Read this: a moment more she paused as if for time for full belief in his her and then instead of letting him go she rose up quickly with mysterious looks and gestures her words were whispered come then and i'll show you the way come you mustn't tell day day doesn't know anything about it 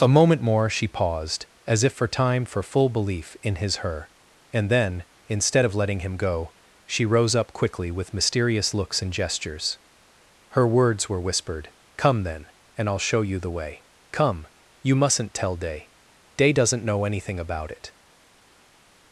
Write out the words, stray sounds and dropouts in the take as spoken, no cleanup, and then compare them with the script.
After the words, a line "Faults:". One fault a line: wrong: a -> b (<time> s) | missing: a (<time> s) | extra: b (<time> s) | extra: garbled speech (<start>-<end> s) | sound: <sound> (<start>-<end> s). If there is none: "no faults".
a moment more she paused as if for time for full belief in his her and then instead of letting him go she rose up quickly with mysterious looks and gestures her words were whispered come then and i'll show you the way come you mustn't tell day day doesn't know anything about it
Faults:
no faults